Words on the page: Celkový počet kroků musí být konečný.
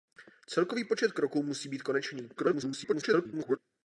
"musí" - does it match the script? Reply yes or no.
yes